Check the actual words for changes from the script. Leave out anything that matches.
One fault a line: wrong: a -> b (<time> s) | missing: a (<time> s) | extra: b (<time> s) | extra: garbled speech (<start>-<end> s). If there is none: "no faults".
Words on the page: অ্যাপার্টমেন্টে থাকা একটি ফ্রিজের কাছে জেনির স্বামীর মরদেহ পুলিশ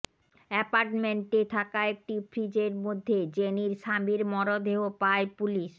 wrong: কাছে -> মধ্যে (2.8 s)
extra: পায় (5.0 s)